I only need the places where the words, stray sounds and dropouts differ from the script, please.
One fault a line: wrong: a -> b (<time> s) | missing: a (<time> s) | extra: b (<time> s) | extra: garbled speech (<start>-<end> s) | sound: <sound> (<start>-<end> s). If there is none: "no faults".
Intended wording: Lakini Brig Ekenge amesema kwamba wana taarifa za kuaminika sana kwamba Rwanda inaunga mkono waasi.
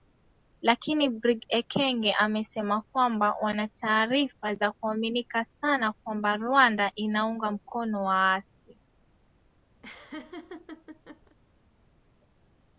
sound: laugh (9.8-11.4 s)